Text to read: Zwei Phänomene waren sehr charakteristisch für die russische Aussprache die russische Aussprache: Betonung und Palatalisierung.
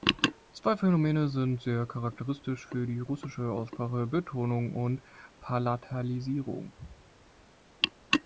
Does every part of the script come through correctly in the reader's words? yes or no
no